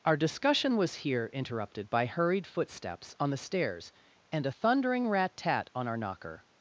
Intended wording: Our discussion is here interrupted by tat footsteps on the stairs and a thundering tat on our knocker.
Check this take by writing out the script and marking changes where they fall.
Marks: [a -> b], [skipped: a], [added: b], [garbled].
Our discussion [is -> was] here interrupted by [tat -> hurried] footsteps on the stairs and a thundering [added: rat] tat on our knocker.